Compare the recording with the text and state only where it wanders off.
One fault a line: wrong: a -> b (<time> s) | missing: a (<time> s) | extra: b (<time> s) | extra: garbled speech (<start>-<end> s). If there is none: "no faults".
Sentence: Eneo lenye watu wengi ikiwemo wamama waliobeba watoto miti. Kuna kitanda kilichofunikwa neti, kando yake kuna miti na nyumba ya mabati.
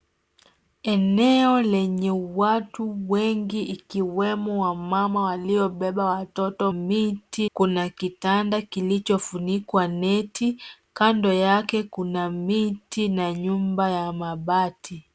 no faults